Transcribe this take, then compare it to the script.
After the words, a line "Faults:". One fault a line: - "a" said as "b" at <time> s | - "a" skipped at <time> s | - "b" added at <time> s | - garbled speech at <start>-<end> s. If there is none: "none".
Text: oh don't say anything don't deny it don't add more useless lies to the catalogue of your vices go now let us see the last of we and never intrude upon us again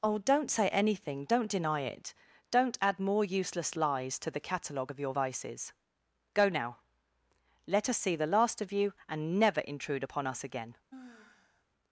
oh don't say anything don't deny it don't add more useless lies to the catalogue of your vices go now let us see the last of you and never intrude upon us again
Faults:
- "we" said as "you" at 8.7 s